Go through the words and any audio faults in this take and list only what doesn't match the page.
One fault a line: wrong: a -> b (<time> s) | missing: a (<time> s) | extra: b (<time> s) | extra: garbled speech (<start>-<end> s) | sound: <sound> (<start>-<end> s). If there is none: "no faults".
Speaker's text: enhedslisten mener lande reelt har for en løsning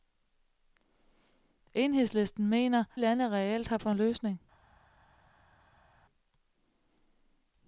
no faults